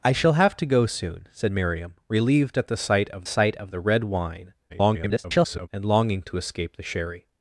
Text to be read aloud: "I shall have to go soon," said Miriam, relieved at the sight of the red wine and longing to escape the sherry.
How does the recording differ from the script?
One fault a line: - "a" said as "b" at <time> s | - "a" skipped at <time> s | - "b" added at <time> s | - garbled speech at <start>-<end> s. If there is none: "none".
- "sight of" added at 3.3 s
- garbled speech at 4.7-5.7 s